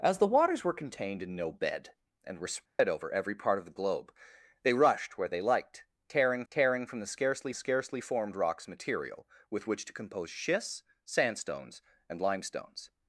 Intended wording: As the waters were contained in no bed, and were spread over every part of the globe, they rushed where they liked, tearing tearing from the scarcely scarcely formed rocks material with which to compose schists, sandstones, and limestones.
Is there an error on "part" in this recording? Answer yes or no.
no